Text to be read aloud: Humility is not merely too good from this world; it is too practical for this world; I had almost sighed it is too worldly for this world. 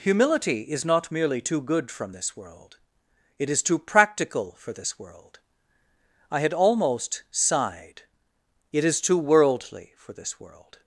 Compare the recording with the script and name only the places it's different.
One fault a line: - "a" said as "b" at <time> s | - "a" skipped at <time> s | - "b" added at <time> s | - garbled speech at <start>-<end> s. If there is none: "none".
none